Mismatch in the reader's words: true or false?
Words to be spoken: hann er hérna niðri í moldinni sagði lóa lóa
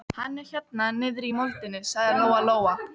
false